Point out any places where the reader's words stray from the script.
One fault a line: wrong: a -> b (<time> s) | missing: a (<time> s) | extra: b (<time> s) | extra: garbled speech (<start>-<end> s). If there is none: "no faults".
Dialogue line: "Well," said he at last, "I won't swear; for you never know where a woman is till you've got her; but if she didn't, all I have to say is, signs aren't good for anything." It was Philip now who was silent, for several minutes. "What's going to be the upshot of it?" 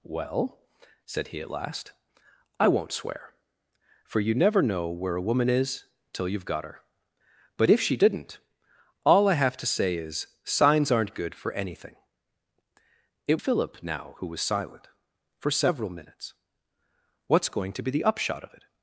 missing: was (13.4 s)